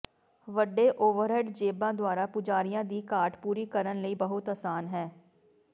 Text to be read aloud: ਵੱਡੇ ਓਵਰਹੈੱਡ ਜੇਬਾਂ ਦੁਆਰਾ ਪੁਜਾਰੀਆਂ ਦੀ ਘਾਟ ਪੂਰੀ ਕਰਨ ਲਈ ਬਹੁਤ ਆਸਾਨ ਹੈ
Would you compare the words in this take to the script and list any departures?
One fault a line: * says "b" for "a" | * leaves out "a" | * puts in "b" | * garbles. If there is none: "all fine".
all fine